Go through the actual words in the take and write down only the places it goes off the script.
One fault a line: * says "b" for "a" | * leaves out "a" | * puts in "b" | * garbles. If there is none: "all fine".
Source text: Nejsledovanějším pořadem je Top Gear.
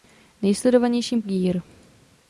* leaves out "pořadem je Top"